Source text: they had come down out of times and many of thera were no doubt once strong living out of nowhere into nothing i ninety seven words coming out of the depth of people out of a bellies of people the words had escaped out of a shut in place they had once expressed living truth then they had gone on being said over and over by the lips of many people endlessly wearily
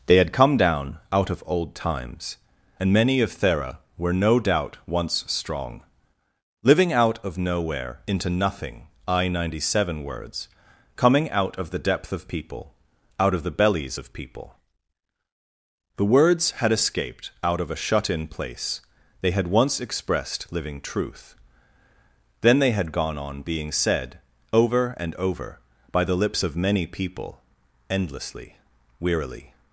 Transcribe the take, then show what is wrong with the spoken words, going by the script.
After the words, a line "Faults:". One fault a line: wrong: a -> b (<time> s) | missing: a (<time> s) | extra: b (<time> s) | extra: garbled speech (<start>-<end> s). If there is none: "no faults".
they had come down out of old times and many of thera were no doubt once strong living out of nowhere into nothing i ninety seven words coming out of the depth of people out of the bellies of people the words had escaped out of a shut in place they had once expressed living truth then they had gone on being said over and over by the lips of many people endlessly wearily
Faults:
extra: old (1.4 s)
wrong: a -> the (13.4 s)